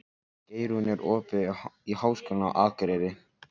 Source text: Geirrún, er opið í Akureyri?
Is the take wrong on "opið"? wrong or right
right